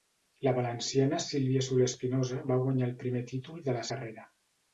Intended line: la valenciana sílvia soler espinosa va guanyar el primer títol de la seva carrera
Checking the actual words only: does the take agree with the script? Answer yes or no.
no